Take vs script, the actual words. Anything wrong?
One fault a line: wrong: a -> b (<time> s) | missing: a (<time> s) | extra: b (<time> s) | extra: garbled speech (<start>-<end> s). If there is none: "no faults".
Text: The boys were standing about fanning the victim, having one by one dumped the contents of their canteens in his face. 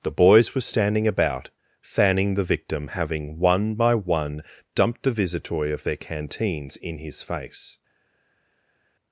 wrong: contents -> visitoi (5.1 s)